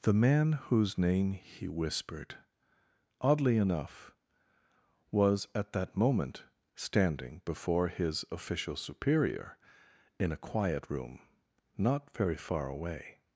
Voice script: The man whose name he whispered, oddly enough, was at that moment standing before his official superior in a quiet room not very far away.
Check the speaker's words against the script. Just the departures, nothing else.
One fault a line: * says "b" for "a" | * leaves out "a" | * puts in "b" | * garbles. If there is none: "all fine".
all fine